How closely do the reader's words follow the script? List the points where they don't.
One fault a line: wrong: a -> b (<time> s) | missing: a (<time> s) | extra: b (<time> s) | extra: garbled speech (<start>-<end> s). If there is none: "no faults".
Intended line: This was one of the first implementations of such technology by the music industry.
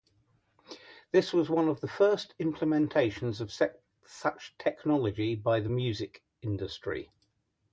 no faults